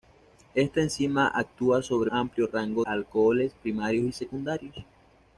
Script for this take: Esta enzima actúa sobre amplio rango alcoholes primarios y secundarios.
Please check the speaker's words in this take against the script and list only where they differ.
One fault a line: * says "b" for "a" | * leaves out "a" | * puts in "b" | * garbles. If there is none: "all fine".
all fine